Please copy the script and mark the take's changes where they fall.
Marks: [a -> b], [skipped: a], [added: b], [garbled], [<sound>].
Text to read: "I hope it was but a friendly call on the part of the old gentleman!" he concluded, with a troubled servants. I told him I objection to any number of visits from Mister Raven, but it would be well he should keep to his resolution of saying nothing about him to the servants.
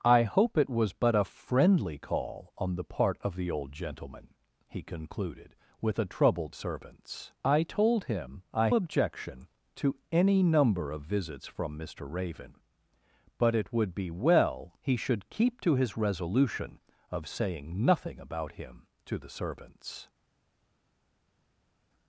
"I hope it was but a friendly call on the part of the old gentleman!" he concluded, with a troubled servants. I told him I objection to any number of visits from Mister Raven, but it would be well he should keep to his resolution of saying nothing about him to the servants.